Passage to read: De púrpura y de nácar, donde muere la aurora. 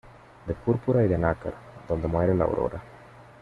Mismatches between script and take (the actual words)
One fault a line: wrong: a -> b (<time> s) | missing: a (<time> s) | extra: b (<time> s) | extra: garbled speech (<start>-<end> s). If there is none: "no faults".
no faults